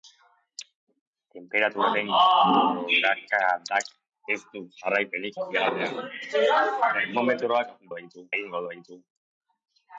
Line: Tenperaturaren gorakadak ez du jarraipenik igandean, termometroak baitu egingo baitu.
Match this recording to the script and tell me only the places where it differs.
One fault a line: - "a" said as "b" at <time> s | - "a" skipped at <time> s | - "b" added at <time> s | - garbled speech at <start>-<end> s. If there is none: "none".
none